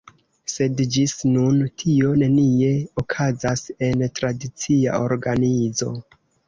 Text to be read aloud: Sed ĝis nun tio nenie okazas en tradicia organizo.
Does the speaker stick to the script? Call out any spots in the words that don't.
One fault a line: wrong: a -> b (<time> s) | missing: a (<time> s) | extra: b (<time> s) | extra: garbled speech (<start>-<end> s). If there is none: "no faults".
no faults